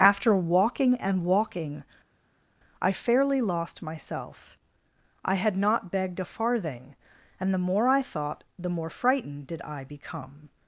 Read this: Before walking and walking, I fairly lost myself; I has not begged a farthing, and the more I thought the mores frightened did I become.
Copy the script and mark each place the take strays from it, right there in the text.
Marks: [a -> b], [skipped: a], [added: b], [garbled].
[Before -> After] walking and walking, I fairly lost myself; I [has -> had] not begged a farthing, and the more I thought the [mores -> more] frightened did I become.